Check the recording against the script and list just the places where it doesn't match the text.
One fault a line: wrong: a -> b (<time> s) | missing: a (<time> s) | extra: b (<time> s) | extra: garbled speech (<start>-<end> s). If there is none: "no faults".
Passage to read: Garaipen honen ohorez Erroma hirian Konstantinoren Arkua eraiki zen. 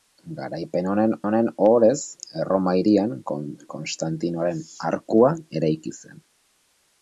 extra: honen (1.3 s)